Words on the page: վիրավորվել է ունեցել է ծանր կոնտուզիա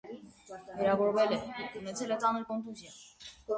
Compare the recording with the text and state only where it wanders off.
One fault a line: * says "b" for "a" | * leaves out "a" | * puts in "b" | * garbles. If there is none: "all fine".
all fine